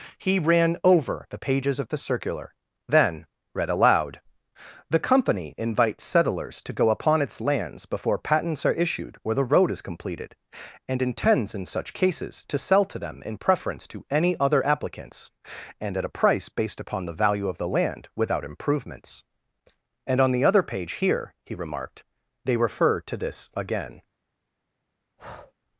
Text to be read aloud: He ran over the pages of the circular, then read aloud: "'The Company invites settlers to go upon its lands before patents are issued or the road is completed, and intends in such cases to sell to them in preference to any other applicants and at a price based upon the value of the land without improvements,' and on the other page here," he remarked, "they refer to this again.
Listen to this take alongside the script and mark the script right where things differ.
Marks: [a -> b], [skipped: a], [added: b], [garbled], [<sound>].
He ran over the pages of the circular, then read aloud: "'The Company invites settlers to go upon its lands before patents are issued or the road is completed, and intends in such cases to sell to them in preference to any other applicants and at a price based upon the value of the land without improvements,' and on the other page here," he remarked, "they refer to this again. [breath]